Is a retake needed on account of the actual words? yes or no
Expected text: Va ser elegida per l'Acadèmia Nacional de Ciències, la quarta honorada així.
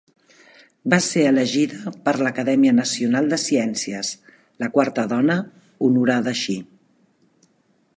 yes